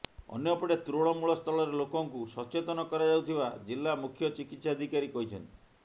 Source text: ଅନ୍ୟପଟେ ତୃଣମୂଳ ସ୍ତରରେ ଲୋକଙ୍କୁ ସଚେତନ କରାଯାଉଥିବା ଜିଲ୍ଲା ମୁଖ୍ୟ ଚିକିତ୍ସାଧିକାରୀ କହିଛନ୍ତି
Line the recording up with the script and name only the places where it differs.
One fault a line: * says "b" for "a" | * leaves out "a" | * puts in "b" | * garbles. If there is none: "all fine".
all fine